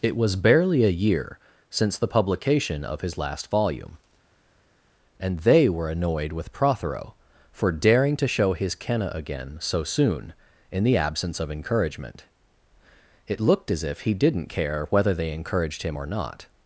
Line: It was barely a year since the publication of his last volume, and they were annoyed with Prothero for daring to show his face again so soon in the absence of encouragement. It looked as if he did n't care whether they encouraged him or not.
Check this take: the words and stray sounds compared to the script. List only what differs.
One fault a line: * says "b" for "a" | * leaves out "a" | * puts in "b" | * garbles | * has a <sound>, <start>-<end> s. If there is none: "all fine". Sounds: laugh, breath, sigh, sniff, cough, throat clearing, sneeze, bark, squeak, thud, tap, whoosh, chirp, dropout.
* says "kenna" for "face"